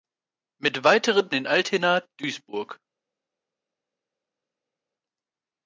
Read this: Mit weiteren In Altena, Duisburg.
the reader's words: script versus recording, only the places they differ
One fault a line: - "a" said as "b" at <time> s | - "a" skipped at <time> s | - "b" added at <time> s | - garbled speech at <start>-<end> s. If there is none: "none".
none